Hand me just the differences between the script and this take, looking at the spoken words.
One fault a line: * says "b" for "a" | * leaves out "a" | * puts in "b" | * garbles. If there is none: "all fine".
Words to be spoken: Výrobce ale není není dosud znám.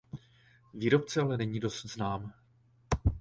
* leaves out "není"